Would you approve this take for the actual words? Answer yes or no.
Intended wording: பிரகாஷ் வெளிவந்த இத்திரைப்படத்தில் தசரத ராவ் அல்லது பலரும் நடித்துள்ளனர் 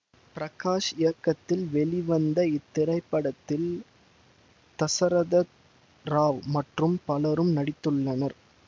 no